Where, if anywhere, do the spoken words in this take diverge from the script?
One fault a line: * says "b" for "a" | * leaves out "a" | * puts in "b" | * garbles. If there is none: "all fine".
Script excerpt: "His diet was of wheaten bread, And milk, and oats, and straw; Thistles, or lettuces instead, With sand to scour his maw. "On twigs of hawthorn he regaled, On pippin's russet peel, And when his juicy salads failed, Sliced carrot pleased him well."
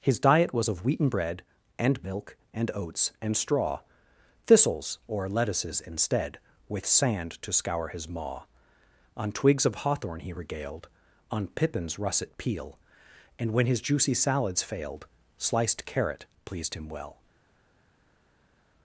all fine